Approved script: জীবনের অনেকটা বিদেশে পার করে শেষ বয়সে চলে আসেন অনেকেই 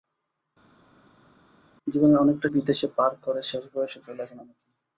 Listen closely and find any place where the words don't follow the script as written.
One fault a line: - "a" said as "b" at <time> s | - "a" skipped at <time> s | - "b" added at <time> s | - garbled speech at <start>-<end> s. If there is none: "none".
none